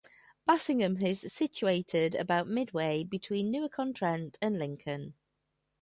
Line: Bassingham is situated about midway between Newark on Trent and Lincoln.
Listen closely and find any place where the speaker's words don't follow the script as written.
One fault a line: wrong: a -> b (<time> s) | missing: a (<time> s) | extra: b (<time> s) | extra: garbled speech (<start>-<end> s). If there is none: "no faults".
no faults